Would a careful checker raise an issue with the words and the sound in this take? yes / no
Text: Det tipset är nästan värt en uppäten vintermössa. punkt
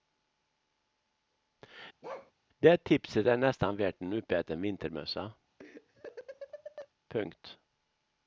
yes